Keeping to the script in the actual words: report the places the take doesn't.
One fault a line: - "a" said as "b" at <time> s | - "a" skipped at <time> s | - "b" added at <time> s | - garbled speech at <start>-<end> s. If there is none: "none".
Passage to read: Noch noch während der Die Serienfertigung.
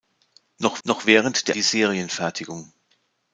none